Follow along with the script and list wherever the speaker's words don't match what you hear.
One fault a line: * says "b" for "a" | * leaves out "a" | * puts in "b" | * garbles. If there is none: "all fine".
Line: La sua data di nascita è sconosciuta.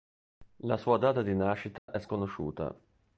all fine